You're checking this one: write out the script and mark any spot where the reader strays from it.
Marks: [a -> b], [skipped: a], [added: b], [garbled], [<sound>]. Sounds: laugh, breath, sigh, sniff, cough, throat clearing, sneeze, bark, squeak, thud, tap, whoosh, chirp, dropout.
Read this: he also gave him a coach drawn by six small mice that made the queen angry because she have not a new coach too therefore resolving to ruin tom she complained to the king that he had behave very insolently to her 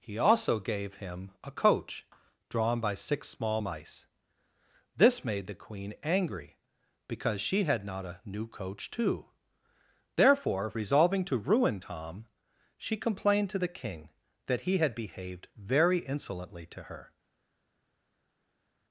he also gave him a coach drawn by six small mice [that -> this] made the queen angry because she [have -> had] not a new coach too therefore resolving to ruin tom she complained to the king that he had [behave -> behaved] very insolently to her